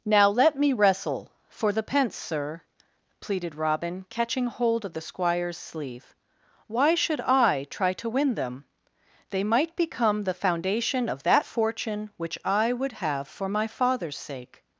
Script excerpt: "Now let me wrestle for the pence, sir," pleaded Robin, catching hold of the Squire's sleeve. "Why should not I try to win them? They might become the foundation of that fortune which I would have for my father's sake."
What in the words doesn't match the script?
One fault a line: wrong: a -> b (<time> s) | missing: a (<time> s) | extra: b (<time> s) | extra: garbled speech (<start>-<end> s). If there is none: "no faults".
missing: not (7.2 s)